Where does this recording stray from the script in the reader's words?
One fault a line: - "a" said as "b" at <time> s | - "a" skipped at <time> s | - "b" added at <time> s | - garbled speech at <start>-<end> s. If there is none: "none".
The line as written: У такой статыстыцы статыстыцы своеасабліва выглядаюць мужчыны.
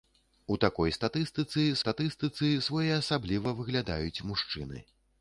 none